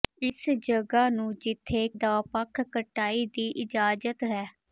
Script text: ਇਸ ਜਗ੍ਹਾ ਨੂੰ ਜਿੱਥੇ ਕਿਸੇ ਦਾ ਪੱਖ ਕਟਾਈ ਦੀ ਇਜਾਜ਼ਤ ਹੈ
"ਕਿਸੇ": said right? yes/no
no